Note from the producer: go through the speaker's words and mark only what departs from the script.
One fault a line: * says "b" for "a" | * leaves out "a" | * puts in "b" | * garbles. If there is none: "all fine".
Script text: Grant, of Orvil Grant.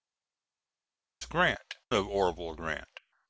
all fine